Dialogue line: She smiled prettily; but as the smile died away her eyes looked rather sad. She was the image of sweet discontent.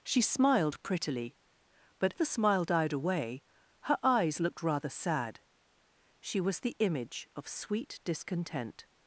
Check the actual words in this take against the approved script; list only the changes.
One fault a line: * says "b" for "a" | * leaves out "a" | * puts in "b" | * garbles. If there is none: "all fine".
* leaves out "as"